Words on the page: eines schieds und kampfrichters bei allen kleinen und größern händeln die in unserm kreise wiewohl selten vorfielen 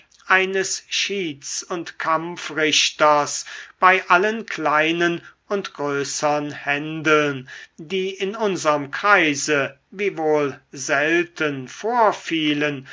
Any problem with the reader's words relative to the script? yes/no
no